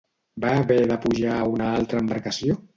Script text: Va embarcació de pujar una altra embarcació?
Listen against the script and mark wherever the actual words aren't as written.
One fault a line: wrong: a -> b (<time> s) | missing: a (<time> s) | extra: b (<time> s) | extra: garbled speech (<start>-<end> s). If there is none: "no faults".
wrong: embarcació -> haver (0.6 s)
extra: a (1.4 s)